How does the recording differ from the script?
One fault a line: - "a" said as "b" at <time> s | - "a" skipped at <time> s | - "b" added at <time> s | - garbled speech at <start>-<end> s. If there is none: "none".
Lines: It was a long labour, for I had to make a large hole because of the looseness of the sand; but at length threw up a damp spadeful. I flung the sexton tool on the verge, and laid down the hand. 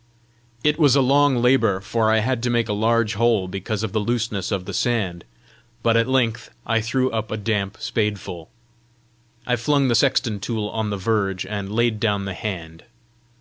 - "I" added at 6.7 s